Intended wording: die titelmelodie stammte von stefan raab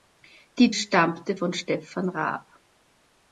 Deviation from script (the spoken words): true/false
true